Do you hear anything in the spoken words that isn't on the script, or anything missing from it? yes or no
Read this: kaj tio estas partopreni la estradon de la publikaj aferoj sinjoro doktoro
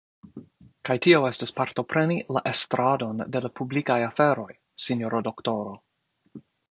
no